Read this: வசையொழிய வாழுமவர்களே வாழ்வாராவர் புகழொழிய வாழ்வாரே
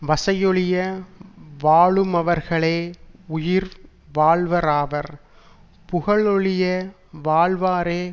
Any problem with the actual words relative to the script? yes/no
yes